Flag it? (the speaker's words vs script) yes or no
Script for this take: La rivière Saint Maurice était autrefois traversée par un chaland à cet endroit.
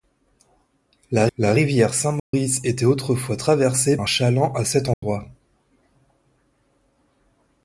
yes